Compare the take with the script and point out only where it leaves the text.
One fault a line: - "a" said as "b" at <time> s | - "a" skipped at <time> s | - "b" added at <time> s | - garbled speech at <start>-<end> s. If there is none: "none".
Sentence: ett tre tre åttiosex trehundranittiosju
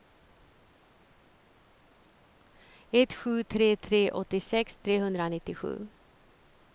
- "sju" added at 3.1 s